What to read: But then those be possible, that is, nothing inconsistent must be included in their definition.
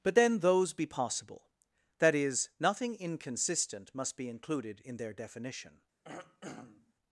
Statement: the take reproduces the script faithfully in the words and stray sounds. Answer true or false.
false